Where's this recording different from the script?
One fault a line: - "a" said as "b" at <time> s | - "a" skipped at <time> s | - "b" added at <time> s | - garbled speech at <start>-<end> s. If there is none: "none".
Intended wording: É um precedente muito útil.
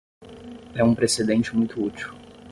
none